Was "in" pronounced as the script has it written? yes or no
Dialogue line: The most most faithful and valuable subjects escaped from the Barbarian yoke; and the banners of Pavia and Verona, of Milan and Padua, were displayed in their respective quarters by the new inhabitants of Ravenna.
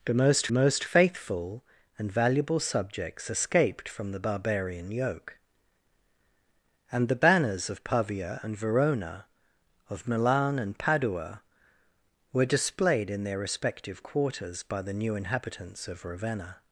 yes